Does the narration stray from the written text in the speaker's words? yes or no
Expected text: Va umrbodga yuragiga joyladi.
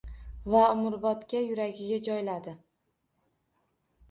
no